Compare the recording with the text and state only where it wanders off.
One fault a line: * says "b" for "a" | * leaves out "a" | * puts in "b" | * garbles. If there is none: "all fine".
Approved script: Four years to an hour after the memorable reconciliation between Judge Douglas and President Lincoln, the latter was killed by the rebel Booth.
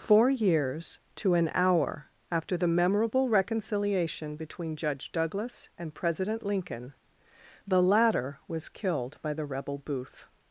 all fine